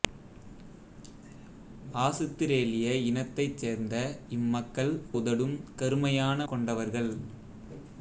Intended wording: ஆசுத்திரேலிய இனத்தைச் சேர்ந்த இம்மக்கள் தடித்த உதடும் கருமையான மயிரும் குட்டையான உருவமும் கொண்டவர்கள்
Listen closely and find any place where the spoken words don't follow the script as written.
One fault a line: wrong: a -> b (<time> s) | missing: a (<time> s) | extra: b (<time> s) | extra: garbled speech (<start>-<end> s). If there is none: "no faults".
missing: தடித்த (4.9 s)
missing: மயிரும் குட்டையான உருவமும் (6.5 s)